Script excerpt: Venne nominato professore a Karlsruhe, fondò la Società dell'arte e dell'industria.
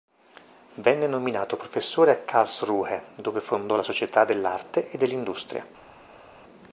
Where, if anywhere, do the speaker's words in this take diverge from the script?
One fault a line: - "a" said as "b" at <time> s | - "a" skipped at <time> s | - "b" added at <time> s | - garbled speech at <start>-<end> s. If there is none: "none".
- "dove" added at 3.1 s